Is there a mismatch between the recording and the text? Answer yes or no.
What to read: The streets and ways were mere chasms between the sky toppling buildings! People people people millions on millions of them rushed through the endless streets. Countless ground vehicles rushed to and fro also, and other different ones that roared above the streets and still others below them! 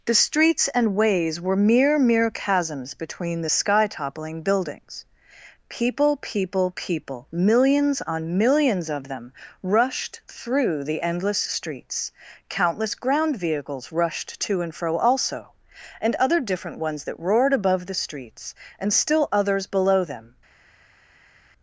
yes